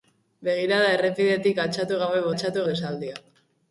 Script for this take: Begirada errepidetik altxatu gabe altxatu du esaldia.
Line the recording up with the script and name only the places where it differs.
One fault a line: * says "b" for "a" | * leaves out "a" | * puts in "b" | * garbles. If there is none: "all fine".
all fine